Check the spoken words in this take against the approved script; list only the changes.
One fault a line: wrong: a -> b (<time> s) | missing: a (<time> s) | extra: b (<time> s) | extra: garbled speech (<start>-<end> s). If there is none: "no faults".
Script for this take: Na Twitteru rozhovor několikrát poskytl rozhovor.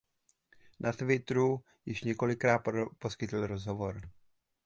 wrong: rozhovor -> již (1.9 s)